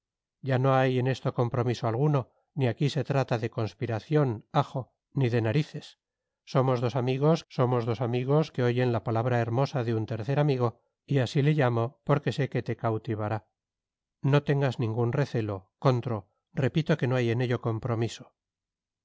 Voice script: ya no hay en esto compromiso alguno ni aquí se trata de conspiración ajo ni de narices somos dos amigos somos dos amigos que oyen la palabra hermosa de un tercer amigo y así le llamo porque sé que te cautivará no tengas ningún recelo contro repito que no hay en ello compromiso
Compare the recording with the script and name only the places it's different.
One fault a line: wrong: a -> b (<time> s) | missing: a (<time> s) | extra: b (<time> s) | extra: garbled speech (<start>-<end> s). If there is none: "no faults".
no faults